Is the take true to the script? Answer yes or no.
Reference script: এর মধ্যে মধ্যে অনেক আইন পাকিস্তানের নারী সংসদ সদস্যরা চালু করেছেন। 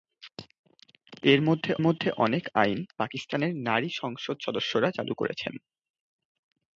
yes